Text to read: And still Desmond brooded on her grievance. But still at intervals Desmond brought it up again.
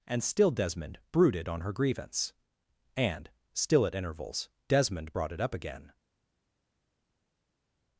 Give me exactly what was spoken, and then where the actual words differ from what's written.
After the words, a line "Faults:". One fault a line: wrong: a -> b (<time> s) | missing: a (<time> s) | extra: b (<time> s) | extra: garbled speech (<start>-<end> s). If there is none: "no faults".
And still Desmond brooded on her grievance. And still at intervals Desmond brought it up again.
Faults:
wrong: But -> And (3.0 s)